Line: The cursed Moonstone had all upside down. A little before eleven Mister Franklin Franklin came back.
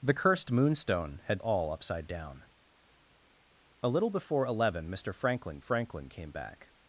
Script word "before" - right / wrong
right